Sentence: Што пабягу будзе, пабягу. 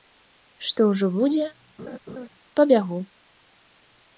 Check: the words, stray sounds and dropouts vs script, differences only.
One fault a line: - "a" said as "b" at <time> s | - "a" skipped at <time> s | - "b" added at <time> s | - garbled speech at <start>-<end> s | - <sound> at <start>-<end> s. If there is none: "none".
- "пабягу" said as "ўжо" at 0.9 s
- laugh at 1.8-2.3 s